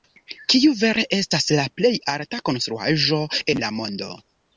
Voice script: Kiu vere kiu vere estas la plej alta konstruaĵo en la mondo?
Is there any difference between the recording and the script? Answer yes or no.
yes